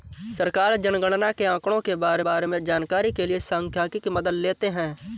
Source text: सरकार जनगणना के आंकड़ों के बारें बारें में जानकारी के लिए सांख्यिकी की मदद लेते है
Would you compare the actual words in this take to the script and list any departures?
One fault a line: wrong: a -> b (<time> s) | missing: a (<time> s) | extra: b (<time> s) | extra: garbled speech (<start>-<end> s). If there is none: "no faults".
no faults